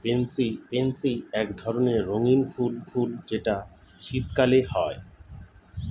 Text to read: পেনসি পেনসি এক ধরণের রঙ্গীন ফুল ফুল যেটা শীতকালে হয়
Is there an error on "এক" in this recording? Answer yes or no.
no